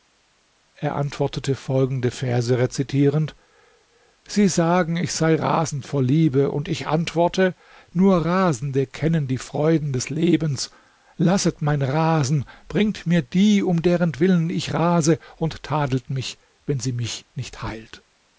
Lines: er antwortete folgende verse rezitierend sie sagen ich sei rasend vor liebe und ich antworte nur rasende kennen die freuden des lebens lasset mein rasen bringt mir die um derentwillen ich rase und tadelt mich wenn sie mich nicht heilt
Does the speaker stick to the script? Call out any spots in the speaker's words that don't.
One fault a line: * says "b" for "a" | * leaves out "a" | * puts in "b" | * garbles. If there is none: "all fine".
all fine